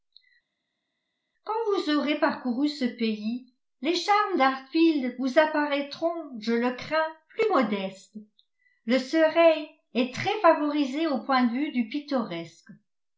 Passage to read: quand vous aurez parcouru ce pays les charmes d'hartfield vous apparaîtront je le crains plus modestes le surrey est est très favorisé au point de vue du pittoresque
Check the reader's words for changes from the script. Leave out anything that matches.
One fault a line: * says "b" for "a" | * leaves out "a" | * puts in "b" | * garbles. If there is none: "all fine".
* leaves out "est"